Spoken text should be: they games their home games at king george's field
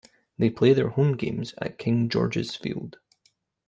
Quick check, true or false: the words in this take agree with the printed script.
false